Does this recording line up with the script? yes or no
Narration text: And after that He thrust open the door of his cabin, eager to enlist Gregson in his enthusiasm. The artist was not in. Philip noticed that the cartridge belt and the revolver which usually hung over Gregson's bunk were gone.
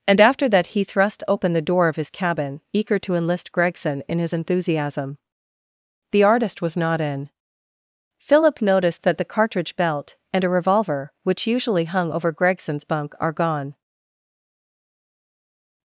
no